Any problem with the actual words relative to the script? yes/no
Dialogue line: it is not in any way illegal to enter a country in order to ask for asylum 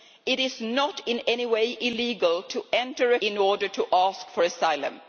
yes